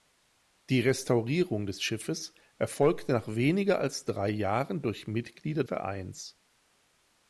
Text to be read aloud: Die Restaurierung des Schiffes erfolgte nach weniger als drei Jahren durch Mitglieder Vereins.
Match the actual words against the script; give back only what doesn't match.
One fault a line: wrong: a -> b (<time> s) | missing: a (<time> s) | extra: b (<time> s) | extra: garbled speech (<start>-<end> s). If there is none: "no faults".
no faults